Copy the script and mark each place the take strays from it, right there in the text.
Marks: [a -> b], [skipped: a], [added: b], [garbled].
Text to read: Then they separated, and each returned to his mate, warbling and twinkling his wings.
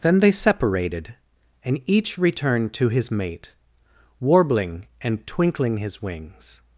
Then they separated, and each returned to his mate, warbling and twinkling his wings.